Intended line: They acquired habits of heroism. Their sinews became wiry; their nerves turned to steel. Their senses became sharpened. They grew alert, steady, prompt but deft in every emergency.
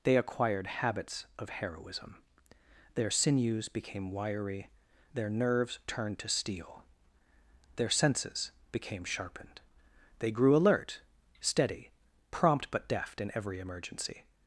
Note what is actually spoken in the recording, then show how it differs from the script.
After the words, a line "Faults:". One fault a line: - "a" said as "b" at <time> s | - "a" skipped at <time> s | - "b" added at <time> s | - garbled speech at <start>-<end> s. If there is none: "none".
They acquired habits of heroism. Their sinews became wiry; their nerves turned to steel. Their senses became sharpened. They grew alert, steady, prompt but deft in every emergency.
Faults:
none